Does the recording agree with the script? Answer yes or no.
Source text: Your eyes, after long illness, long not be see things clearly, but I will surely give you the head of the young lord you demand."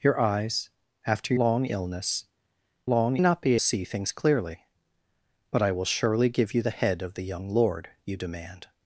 yes